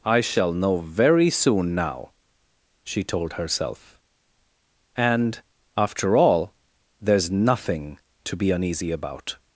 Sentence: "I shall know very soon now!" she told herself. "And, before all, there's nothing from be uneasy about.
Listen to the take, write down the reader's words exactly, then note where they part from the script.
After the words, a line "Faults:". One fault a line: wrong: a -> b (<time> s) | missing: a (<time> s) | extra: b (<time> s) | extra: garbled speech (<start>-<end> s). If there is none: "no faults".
"I shall know very soon now!" she told herself. "And, after all, there's nothing to be uneasy about.
Faults:
wrong: before -> after (5.8 s)
wrong: from -> to (8.2 s)